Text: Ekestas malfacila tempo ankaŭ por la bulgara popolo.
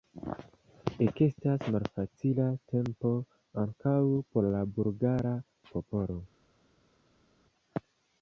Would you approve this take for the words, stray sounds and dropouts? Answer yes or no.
yes